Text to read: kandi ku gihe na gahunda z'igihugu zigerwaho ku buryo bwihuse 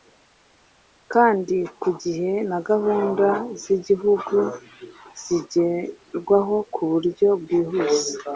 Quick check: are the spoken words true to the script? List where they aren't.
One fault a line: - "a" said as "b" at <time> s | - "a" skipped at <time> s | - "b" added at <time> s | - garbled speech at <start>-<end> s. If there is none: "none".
none